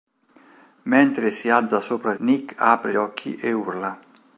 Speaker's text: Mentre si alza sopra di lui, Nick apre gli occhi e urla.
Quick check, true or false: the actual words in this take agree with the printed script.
false